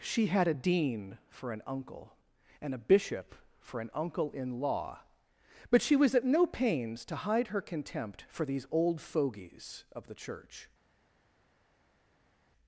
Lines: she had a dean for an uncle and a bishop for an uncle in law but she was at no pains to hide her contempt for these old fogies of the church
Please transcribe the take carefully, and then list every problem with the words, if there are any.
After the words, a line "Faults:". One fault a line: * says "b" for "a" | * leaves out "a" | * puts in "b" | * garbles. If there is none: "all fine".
she had a dean for an uncle and a bishop for an uncle in law but she was at no pains to hide her contempt for these old fogies of the church
Faults:
all fine